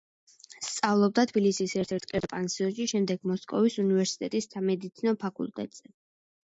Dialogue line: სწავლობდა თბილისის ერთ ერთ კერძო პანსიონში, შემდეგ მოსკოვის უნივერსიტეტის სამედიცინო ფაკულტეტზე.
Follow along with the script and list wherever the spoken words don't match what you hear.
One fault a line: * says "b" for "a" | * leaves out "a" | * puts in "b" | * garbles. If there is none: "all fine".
all fine